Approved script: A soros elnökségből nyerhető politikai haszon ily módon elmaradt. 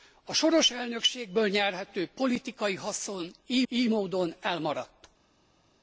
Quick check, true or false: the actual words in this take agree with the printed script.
false